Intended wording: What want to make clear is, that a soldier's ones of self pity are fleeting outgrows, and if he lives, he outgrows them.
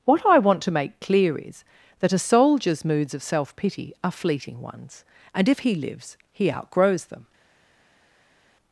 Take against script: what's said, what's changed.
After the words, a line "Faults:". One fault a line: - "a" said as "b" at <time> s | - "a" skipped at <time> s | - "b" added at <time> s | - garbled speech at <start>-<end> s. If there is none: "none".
What I want to make clear is, that a soldier's moods of self pity are fleeting ones, and if he lives, he outgrows them.
Faults:
- "I" added at 0.2 s
- "ones" said as "moods" at 2.8 s
- "outgrows" said as "ones" at 4.6 s